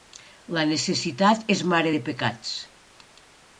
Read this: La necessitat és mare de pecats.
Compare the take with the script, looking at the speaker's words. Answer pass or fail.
pass